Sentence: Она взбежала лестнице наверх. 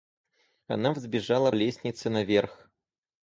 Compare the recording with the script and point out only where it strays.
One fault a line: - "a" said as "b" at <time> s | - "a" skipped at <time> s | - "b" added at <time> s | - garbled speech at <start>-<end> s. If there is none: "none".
none